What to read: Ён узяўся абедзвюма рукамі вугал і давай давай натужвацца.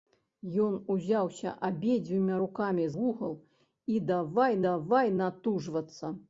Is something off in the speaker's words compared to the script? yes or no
no